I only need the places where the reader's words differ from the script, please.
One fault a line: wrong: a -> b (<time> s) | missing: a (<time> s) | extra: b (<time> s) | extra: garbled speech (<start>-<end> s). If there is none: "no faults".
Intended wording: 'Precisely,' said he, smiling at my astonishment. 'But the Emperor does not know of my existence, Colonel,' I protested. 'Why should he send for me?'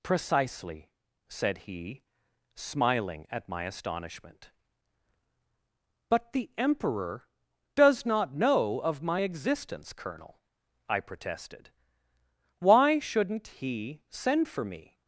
wrong: should -> shouldn't (13.0 s)